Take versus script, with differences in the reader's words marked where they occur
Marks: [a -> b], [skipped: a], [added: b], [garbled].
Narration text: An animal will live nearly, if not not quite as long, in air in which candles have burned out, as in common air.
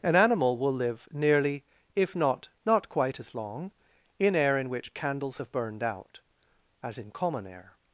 An animal will live nearly, if not not quite as long, in air in which candles have burned out, as in common air.